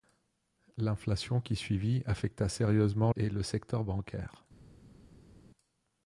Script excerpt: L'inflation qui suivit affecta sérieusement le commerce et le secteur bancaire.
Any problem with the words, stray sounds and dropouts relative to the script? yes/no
yes